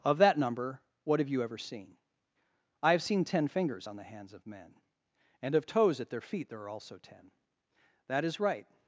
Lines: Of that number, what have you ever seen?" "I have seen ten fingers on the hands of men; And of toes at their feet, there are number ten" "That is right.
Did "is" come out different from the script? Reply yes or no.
no